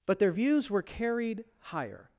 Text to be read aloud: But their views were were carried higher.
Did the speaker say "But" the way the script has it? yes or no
yes